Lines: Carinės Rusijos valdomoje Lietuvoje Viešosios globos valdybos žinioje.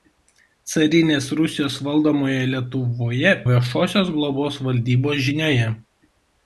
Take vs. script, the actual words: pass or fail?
pass